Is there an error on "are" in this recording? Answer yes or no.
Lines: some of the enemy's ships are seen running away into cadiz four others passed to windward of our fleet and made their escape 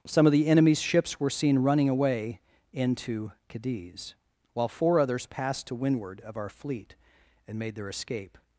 yes